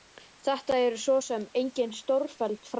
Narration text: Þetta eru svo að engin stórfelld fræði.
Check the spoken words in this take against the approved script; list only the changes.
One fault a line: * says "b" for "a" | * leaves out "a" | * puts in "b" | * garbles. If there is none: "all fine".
* says "sem" for "að"